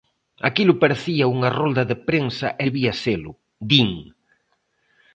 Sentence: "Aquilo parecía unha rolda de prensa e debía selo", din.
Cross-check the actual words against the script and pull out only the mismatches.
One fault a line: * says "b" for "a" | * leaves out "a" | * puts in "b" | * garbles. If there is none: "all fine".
all fine